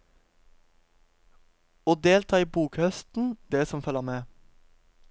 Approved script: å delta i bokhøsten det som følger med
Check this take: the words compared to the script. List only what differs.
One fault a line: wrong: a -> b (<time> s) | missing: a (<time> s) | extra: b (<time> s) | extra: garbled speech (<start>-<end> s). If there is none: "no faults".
no faults